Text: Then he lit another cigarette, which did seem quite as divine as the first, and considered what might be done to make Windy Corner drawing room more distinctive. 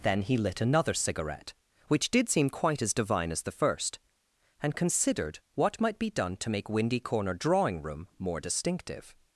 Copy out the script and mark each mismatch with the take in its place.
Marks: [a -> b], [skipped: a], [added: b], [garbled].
Then he lit another cigarette, which did seem quite as divine as the first, and considered what might be done to make Windy Corner drawing room more distinctive.